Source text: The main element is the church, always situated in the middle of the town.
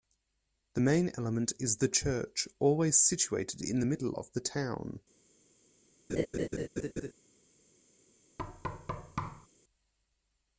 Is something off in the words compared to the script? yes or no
no